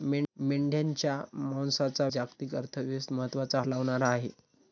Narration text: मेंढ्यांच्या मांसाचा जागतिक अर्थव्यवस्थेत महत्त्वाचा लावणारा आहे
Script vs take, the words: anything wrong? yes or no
no